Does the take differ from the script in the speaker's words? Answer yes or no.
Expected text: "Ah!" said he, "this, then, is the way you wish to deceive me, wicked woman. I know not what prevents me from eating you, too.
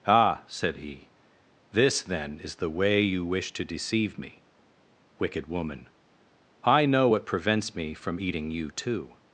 yes